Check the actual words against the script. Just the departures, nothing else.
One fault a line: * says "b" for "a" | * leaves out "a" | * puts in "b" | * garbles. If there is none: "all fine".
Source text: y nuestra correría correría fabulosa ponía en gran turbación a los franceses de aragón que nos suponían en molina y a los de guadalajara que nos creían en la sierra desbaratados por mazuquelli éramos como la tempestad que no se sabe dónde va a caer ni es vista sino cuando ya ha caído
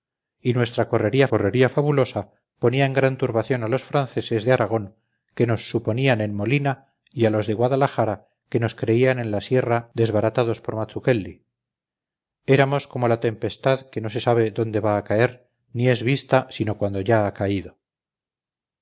all fine